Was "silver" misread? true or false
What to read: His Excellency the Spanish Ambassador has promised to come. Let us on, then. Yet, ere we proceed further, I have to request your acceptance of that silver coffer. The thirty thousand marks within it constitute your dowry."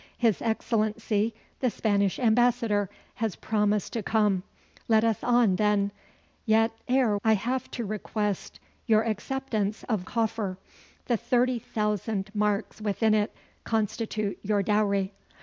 true